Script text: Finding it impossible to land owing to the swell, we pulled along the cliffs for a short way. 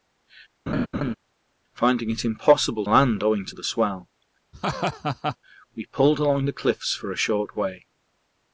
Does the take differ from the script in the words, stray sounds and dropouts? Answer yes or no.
yes